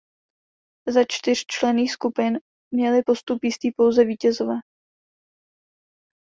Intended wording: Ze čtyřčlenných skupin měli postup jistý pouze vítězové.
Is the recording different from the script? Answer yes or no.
no